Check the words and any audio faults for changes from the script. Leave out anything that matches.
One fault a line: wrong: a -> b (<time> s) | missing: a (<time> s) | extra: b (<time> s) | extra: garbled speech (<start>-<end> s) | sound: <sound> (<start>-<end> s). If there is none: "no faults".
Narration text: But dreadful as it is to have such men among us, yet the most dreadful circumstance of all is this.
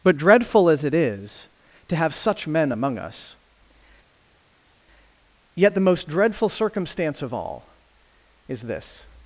no faults